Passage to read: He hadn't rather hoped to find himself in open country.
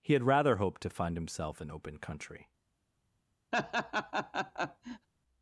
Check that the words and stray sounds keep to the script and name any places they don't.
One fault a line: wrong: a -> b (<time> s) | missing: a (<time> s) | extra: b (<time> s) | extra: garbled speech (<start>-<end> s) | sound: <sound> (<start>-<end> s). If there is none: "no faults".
wrong: hadn't -> had (0.1 s)
sound: laugh (3.5-5.1 s)